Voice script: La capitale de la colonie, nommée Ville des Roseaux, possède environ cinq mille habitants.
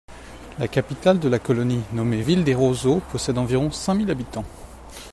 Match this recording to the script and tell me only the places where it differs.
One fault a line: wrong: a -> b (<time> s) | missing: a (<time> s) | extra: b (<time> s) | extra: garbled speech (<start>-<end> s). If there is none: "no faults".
no faults